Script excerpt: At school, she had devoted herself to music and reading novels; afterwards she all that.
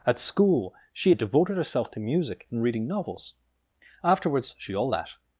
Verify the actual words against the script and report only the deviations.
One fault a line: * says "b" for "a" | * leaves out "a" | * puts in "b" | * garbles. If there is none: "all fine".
all fine